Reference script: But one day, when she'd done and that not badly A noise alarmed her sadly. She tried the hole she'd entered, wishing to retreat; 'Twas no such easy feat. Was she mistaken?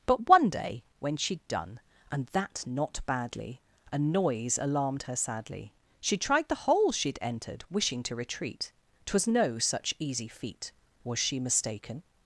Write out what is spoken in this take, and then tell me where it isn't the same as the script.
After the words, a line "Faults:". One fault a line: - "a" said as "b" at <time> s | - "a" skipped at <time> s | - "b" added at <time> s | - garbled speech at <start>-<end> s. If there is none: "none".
But one day, when she'd done and that not badly A noise alarmed her sadly. She tried the hole she'd entered, wishing to retreat; 'Twas no such easy feat. Was she mistaken?
Faults:
none